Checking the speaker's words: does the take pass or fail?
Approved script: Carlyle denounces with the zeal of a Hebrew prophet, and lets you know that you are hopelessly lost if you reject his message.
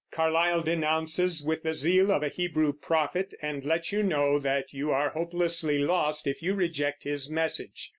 pass